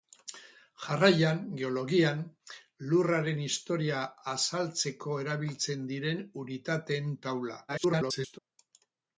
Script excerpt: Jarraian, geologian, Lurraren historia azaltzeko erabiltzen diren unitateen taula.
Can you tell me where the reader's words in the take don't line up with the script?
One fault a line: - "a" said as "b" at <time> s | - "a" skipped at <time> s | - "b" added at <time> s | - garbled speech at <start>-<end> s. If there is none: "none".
- garbled speech at 7.7-8.4 s